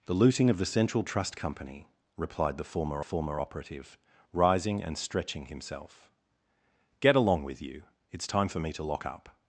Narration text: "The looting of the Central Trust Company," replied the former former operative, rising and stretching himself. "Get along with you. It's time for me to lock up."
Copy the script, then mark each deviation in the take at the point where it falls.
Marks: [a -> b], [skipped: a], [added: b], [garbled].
"The looting of the Central Trust Company," replied the former former operative, rising and stretching himself. "Get along with you. It's time for me to lock up."